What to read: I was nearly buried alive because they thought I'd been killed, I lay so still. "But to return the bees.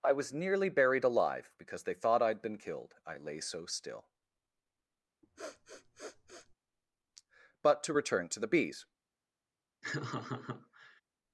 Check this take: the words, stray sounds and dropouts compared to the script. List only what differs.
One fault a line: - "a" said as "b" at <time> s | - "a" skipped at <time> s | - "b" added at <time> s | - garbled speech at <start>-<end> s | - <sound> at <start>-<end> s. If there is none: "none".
- sniff at 5.2-6.6 s
- "to" added at 8.3 s
- laugh at 9.8-11.0 s